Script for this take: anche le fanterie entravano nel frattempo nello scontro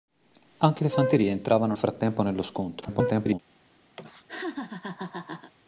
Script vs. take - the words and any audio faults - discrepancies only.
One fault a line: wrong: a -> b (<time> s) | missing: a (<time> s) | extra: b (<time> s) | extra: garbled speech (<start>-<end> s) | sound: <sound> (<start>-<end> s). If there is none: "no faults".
missing: nel (1.8 s)
extra: garbled speech (2.8-3.4 s)
sound: laugh (4.0-5.5 s)